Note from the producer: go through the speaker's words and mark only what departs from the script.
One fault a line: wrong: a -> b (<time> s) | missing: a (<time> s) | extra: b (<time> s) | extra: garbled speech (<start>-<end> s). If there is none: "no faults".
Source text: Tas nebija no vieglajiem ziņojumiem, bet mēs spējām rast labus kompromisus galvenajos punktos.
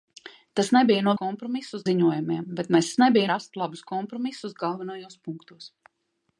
wrong: vieglajiem -> kompromisus (1.2 s)
wrong: spējām -> nebija (3.0 s)